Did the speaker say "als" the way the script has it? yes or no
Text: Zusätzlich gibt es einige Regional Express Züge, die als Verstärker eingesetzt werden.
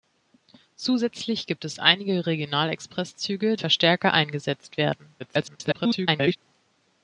no